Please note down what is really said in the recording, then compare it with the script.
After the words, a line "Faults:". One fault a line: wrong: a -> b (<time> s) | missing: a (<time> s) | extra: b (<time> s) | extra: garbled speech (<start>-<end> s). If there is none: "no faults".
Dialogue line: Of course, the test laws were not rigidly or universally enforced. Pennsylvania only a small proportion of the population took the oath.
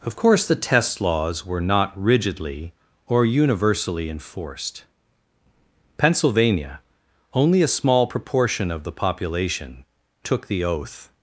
Of course, the test laws were not rigidly or universally enforced. Pennsylvania only a small proportion of the population took the oath.
Faults:
no faults